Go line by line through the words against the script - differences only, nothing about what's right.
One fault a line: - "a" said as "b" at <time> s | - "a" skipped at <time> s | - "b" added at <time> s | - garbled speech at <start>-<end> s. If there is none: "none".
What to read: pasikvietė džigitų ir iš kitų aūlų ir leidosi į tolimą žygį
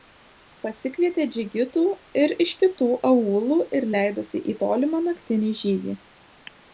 - "naktinį" added at 5.1 s